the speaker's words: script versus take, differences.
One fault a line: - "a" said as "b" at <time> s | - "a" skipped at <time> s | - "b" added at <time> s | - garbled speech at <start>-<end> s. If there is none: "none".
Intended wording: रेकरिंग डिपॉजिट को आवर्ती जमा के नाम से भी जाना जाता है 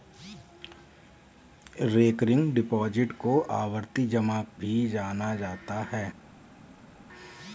- "के नाम से" skipped at 4.4 s